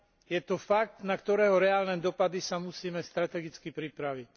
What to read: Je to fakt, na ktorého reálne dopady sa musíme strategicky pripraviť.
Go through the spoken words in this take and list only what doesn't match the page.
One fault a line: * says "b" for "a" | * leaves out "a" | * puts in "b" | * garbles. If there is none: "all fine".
all fine